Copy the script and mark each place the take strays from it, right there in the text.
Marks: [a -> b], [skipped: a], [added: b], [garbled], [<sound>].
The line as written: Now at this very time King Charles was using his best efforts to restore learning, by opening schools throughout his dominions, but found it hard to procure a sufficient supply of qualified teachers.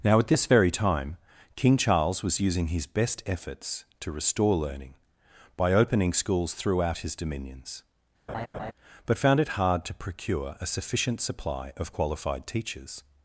Now at this very time King Charles was using his best efforts to restore learning, by opening schools throughout his dominions, [laugh] but found it hard to procure a sufficient supply of qualified teachers.